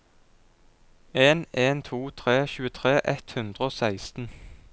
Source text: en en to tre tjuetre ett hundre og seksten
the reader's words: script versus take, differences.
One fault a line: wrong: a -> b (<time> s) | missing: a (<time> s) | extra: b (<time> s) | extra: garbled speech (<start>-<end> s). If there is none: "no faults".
no faults